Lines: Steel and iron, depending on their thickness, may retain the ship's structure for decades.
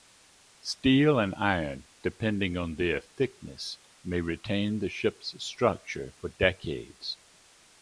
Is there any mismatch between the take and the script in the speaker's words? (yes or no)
no